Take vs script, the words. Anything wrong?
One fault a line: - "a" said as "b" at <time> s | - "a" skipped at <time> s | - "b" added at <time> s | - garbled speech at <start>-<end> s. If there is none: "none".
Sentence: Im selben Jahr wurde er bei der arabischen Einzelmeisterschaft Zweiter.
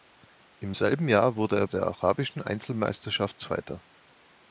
- "bei" skipped at 1.7 s